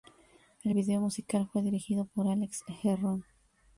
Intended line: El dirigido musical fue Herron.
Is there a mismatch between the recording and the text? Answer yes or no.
yes